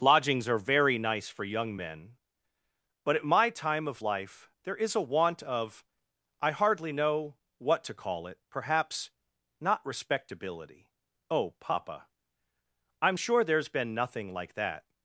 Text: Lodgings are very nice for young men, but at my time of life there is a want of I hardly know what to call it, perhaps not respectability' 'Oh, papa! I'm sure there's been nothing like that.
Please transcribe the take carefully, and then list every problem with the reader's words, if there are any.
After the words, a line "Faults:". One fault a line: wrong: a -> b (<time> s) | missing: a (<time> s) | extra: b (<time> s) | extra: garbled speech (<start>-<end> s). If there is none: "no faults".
Lodgings are very nice for young men, but at my time of life there is a want of I hardly know what to call it, perhaps not respectability' 'Oh, papa! I'm sure there's been nothing like that.
Faults:
no faults